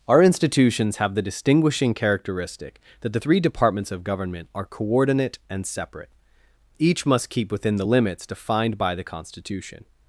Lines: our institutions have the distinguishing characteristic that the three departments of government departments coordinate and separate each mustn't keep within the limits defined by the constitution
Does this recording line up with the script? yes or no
no